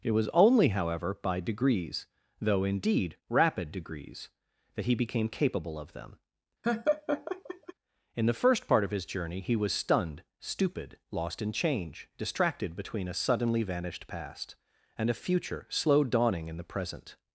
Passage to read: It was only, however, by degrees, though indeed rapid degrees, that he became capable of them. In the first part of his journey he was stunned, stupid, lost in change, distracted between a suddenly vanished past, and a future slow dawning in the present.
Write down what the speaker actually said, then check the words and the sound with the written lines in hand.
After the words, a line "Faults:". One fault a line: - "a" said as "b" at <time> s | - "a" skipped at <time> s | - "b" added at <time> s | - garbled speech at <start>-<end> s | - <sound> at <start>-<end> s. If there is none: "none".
It was only, however, by degrees, though indeed rapid degrees, that he became capable of them. In the first part of his journey he was stunned, stupid, lost in change, distracted between a suddenly vanished past, and a future slow dawning in the present.
Faults:
- laugh at 6.6-7.7 s